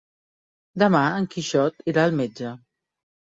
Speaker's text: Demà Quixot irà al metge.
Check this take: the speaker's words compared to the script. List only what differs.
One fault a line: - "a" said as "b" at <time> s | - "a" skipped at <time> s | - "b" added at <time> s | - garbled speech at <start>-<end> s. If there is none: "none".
- "en" added at 1.2 s